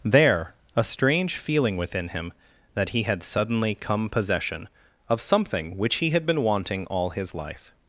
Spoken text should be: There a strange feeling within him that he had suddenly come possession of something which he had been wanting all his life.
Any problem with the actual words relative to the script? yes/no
no